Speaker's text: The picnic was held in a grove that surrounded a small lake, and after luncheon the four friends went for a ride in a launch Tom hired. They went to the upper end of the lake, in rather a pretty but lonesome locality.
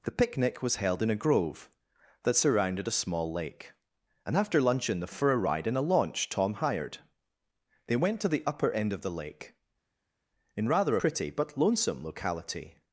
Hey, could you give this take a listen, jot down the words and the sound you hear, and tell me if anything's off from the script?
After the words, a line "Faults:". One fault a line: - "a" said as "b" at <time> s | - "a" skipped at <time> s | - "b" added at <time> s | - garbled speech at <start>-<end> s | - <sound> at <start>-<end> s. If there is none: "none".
The picnic was held in a grove that surrounded a small lake, and after luncheon the for a ride in a launch Tom hired. They went to the upper end of the lake, in rather pretty but lonesome locality.
Faults:
- "four friends went" skipped at 5.1 s
- "a" skipped at 11.0 s